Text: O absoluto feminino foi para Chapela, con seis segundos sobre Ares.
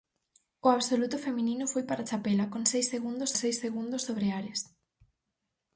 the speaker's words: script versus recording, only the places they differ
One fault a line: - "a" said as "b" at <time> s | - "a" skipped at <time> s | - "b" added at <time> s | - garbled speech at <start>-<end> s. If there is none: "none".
- "seis segundos" added at 3.4 s